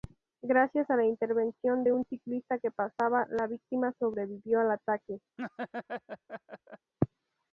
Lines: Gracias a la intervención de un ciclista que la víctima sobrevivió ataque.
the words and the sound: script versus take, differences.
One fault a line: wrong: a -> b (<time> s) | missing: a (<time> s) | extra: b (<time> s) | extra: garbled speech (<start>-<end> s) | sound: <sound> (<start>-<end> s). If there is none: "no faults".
extra: pasaba (2.7 s)
extra: al (4.6 s)
sound: laugh (5.4-6.9 s)